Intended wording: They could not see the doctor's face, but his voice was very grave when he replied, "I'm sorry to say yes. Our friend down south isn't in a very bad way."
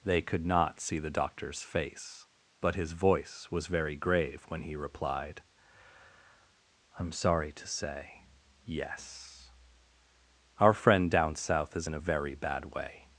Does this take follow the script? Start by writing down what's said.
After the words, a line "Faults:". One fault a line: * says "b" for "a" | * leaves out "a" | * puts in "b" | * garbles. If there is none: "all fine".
They could not see the doctor's face, but his voice was very grave when he replied, "I'm sorry to say yes. Our friend down south is in a very bad way."
Faults:
* says "is" for "isn't"